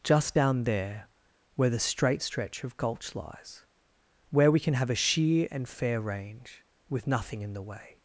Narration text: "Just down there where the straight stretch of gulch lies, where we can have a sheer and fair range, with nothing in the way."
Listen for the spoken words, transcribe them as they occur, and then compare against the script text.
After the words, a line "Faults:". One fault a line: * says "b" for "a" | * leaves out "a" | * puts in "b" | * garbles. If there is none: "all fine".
"Just down there where the straight stretch of gulch lies, where we can have a sheer and fair range, with nothing in the way."
Faults:
all fine